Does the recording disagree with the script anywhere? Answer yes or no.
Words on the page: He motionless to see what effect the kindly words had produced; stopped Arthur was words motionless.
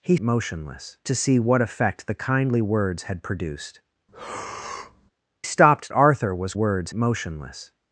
no